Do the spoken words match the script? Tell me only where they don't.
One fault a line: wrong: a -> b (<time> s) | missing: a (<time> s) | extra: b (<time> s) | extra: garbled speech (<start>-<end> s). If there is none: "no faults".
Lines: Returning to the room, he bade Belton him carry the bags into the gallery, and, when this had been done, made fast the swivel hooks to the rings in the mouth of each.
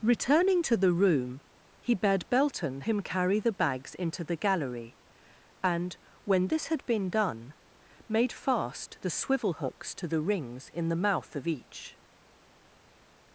no faults